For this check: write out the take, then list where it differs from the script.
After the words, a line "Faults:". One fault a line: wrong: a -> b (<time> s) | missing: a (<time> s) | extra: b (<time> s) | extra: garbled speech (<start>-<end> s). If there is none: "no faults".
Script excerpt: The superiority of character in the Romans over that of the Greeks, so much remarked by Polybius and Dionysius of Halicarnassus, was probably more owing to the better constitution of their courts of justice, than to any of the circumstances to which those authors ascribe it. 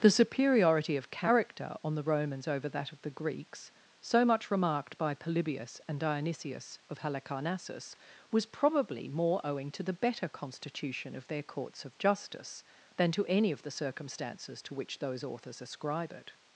The superiority of character on the Romans over that of the Greeks, so much remarked by Polybius and Dionysius of Halicarnassus, was probably more owing to the better constitution of their courts of justice, than to any of the circumstances to which those authors ascribe it.
Faults:
wrong: in -> on (1.8 s)